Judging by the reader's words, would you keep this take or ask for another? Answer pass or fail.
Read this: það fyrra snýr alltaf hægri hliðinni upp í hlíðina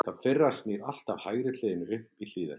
pass